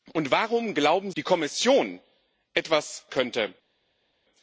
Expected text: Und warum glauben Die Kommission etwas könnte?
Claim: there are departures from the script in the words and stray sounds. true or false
false